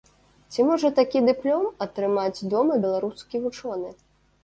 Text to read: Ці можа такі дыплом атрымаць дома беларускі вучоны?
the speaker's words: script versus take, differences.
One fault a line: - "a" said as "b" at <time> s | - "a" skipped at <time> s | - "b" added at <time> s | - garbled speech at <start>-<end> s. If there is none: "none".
none